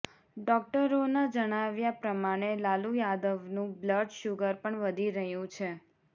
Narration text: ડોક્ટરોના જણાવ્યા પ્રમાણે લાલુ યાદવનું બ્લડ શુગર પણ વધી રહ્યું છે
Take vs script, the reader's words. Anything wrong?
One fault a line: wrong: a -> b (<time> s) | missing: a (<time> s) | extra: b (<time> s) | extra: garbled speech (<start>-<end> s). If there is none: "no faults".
no faults